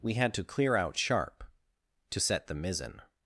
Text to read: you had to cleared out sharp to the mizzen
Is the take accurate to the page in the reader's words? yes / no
no